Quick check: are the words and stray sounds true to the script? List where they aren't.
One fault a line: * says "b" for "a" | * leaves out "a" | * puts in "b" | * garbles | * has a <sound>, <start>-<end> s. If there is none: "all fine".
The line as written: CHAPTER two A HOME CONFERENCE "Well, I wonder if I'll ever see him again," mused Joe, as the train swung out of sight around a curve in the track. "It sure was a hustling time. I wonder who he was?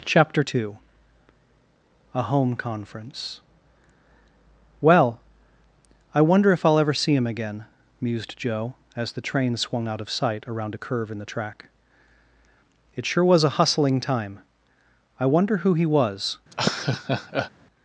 * has a laugh, 16.5-17.5 s